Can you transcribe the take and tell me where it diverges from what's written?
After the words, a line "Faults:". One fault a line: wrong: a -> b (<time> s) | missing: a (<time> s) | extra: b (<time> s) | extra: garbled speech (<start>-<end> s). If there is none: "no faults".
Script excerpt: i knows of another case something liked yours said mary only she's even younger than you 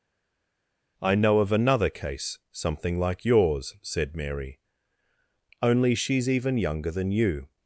i know of another case something like yours said mary only she's even younger than you
Faults:
wrong: knows -> know (1.1 s)
wrong: liked -> like (3.0 s)